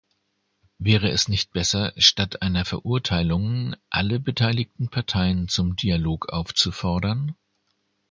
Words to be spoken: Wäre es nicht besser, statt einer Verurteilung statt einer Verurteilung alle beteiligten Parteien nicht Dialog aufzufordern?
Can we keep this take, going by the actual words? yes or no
no